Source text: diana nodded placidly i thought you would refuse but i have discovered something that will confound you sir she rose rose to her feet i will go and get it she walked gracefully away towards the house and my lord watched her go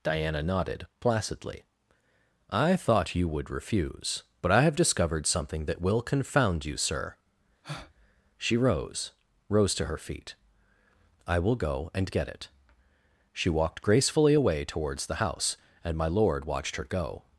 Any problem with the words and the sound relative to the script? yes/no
yes